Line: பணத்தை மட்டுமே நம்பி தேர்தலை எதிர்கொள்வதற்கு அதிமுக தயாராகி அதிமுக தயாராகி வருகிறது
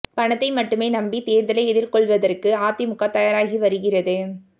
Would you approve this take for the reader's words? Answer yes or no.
no